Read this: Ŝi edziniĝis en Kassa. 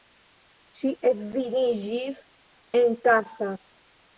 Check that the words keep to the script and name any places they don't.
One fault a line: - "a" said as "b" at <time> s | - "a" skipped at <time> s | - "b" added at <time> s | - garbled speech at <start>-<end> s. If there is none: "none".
none